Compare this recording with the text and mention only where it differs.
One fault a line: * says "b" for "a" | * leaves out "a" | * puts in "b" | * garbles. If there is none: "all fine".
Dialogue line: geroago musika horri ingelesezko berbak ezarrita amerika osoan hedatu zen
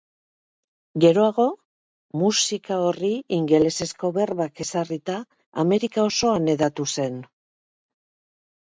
all fine